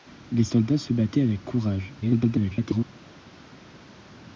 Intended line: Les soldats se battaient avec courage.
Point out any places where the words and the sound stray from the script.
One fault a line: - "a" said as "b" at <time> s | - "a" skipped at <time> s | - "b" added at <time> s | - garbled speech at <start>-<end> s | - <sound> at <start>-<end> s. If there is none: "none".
- garbled speech at 2.0-2.9 s